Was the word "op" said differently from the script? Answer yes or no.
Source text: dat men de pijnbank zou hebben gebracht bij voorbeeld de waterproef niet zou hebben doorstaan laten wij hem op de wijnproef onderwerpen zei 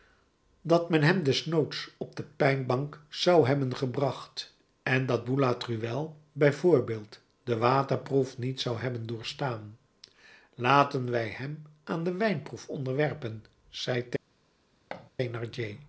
yes